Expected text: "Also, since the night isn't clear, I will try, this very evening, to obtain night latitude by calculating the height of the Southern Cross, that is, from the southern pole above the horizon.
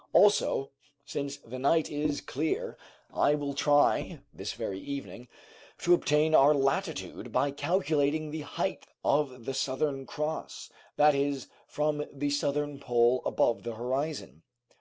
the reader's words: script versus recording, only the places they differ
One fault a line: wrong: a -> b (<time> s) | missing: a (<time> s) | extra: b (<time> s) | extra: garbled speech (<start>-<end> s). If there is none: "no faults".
wrong: isn't -> is (1.9 s)
wrong: night -> our (6.3 s)